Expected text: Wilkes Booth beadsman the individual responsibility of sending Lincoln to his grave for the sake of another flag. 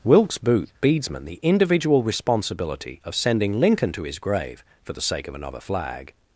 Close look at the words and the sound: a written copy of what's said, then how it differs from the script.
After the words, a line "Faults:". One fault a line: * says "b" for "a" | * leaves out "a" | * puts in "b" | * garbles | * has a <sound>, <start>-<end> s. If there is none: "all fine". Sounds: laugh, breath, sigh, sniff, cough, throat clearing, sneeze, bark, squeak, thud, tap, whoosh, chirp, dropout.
Wilkes Booth beadsman the individual responsibility of sending Lincoln to his grave for the sake of another flag.
Faults:
all fine